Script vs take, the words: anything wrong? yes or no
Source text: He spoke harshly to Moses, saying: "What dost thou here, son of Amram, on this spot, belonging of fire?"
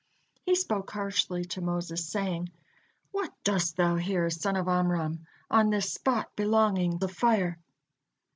no